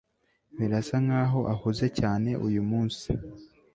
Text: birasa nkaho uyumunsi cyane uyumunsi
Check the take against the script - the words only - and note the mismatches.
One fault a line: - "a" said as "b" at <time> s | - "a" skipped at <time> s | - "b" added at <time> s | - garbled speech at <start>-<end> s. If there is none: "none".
- "uyumunsi" said as "ahuze" at 1.5 s